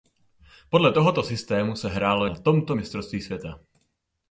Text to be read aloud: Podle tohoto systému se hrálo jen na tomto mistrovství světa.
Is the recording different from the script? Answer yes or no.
yes